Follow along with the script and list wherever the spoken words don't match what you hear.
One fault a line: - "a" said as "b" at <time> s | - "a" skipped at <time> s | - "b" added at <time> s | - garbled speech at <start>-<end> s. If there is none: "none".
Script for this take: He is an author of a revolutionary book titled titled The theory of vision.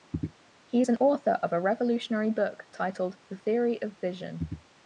- "titled" skipped at 3.2 s